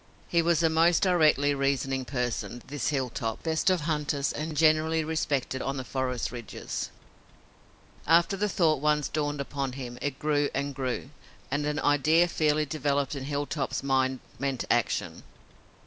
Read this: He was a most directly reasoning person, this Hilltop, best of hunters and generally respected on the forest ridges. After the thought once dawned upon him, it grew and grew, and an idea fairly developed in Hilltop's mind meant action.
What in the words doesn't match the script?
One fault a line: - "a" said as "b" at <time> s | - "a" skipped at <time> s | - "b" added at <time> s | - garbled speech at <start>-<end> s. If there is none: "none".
none